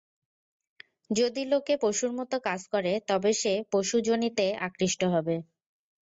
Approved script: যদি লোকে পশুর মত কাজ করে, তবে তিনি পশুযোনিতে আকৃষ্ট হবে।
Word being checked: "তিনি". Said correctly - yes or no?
no